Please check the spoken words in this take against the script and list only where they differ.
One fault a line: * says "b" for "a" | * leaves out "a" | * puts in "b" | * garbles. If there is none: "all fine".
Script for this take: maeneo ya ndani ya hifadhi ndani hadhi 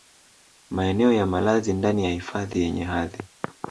* puts in "malazi"
* says "yenye" for "ndani"